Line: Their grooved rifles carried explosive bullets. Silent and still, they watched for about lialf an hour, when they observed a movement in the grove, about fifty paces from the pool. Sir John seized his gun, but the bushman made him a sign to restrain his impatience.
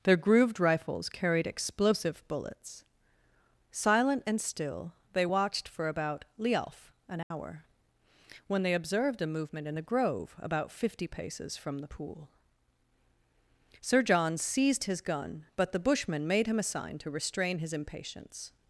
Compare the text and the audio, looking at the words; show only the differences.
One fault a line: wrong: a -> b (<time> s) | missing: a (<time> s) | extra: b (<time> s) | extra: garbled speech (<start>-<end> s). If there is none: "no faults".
no faults